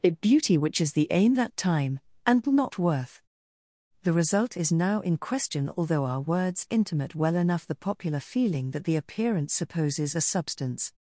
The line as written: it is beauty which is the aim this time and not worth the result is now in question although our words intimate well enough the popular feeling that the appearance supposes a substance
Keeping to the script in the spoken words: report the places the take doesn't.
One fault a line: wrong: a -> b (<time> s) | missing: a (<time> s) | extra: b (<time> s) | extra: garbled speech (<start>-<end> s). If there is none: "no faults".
missing: is (0.2 s)
wrong: this -> that (1.3 s)